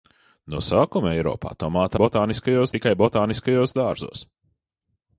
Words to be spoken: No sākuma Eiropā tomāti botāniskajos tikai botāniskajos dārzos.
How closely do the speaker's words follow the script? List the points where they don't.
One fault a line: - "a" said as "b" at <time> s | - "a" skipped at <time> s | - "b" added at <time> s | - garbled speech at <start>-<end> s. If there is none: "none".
none